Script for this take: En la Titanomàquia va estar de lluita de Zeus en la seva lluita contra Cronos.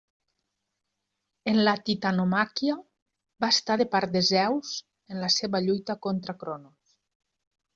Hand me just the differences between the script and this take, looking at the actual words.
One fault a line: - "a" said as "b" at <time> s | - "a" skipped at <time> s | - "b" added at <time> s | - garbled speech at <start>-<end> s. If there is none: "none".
- "lluita" said as "part" at 4.0 s